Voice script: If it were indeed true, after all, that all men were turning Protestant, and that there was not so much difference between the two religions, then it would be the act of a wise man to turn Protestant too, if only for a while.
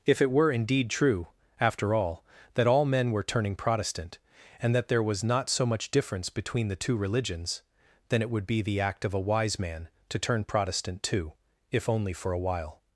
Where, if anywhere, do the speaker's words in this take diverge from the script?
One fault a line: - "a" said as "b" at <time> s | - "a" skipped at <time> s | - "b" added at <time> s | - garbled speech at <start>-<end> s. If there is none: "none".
none